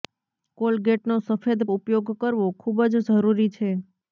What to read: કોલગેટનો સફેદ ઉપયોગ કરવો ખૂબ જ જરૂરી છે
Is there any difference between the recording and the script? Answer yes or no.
no